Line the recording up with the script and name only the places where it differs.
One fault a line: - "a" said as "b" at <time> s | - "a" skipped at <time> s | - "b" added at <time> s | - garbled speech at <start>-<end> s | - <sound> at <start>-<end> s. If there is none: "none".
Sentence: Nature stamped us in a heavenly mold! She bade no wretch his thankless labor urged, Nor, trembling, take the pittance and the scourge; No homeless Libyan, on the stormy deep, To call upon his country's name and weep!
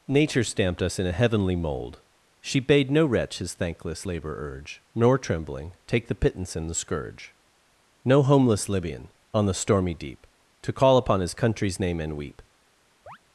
- "urged" said as "urge" at 4.4 s
- chirp at 13.1-13.2 s